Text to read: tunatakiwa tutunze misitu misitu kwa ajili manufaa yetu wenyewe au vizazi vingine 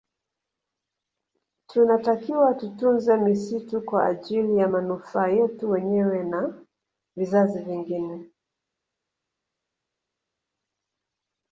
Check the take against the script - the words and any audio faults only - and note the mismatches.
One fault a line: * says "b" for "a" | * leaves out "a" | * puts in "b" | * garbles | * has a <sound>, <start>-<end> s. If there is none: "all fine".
* leaves out "misitu"
* puts in "ya"
* says "na" for "au"